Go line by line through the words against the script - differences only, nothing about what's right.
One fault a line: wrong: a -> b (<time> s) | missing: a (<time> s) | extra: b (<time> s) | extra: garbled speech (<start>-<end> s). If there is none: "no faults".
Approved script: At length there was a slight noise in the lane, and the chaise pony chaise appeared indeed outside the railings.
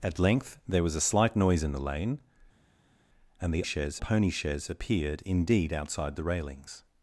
no faults